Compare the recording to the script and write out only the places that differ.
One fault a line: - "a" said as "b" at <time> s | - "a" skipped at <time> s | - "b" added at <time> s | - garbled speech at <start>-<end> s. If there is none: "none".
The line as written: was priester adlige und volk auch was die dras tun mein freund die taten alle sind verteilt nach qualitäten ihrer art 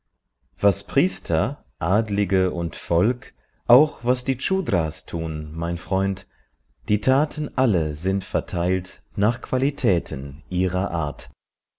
none